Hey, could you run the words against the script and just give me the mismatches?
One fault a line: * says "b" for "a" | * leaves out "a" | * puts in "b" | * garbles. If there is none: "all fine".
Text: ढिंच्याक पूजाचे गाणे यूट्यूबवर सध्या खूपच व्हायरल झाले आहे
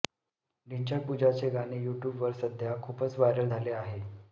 all fine